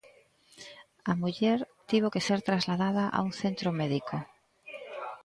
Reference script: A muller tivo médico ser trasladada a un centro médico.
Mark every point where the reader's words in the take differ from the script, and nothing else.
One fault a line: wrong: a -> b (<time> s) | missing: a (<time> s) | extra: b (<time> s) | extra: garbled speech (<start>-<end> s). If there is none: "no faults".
wrong: médico -> que (2.1 s)